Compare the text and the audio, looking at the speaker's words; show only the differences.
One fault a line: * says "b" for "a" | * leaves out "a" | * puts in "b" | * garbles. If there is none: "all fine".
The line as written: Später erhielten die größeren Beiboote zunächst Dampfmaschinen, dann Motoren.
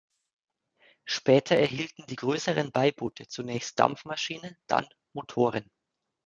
all fine